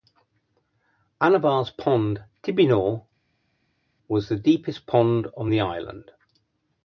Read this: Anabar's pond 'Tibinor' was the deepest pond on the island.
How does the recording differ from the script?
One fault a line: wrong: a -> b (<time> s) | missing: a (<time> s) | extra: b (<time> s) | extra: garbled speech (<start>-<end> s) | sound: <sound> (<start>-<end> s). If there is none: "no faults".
no faults